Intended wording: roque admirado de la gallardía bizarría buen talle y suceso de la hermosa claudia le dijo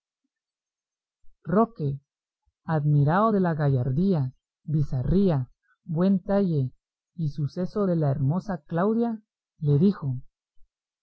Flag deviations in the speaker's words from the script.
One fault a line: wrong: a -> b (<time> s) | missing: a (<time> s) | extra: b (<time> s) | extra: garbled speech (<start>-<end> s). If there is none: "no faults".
no faults